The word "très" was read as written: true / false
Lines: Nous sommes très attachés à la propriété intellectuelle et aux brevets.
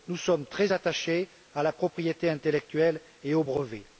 true